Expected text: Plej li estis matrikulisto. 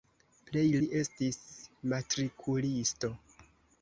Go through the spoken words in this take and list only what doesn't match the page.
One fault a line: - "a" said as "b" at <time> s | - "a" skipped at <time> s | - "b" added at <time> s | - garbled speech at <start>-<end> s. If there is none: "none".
none